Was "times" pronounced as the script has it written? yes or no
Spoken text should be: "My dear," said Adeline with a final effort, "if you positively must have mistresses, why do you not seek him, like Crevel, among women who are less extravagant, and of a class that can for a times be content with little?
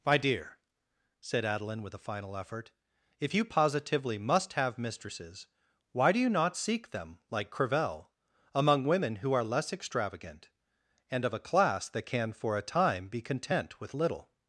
no